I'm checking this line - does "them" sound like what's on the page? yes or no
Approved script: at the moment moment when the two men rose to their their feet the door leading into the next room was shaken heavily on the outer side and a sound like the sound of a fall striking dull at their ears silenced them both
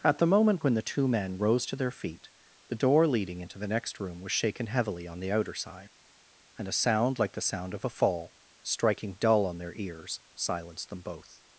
yes